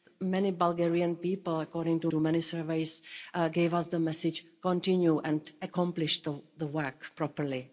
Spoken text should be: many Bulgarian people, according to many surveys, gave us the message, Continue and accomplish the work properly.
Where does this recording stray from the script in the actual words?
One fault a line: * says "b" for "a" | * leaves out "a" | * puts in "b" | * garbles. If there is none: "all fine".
* puts in "to"